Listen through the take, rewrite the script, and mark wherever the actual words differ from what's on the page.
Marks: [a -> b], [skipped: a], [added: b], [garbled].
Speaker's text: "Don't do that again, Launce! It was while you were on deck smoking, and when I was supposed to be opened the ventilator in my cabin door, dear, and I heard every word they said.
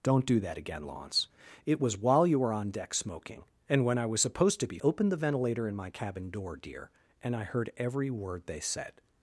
"Don't do that again, Launce! It was while you were on deck smoking, and when I was supposed to be opened the ventilator in my cabin door, dear, and I heard every word they said.